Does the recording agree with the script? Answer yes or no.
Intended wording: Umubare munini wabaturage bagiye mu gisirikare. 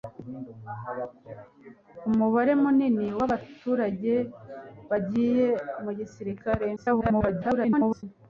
no